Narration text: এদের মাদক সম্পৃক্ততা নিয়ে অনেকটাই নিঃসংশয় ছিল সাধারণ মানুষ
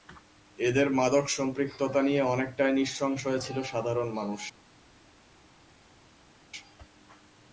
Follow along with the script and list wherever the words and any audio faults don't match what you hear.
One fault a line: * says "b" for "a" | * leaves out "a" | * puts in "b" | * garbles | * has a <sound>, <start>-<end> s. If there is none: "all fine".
all fine